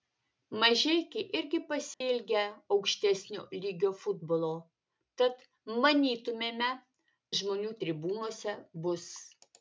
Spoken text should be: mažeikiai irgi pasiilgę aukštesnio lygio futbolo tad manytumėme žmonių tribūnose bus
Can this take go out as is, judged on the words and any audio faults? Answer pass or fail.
fail